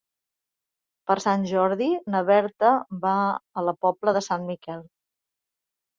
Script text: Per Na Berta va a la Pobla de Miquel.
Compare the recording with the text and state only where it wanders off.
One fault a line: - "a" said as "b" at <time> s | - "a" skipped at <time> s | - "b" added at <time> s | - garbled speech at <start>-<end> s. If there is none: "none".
- "Sant Jordi" added at 1.2 s
- "Sant" added at 4.3 s